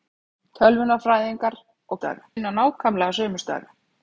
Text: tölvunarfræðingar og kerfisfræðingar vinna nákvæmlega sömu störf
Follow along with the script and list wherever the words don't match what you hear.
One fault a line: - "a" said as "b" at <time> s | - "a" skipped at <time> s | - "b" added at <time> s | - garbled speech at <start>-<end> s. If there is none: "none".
- "kerfisfræðingar" said as "störf" at 2.0 s